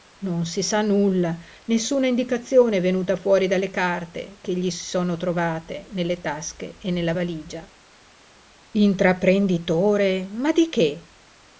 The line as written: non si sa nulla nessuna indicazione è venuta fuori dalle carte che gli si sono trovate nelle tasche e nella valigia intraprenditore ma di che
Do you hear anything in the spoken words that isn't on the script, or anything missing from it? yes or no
no